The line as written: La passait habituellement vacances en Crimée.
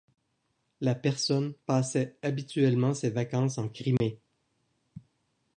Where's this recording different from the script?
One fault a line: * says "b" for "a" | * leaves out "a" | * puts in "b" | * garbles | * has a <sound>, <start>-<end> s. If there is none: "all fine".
* puts in "personne"
* puts in "ses"
* has a dropout, 4.0-4.0 s